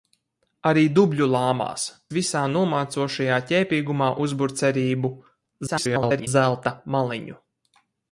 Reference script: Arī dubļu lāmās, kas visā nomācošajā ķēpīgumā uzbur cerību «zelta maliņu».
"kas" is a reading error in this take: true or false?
true